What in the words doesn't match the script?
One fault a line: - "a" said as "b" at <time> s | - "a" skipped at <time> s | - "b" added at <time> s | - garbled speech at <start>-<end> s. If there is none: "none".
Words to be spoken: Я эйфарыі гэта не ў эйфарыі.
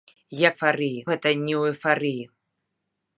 none